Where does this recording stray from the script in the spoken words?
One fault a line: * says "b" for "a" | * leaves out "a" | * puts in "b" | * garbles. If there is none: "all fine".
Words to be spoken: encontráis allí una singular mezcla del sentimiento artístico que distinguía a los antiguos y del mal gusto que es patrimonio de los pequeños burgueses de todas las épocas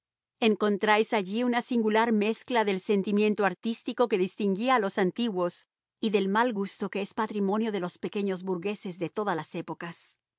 all fine